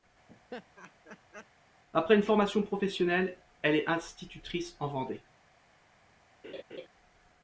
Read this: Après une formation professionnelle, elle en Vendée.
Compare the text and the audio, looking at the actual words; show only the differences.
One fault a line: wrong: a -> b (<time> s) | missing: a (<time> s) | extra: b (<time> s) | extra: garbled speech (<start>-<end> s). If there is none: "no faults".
extra: est institutrice (3.7 s)